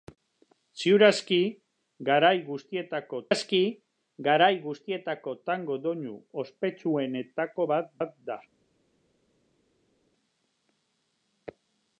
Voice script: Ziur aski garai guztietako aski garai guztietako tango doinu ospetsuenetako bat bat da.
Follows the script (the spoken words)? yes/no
yes